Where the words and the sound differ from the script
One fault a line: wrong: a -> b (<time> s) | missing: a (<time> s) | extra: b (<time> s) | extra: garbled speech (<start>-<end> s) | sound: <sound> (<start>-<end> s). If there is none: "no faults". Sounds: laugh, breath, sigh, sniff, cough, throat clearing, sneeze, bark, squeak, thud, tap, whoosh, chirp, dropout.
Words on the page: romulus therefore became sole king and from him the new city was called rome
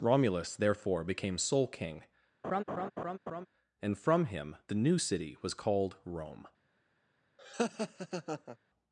sound: laugh (2.4-3.5 s)
sound: laugh (7.4-8.6 s)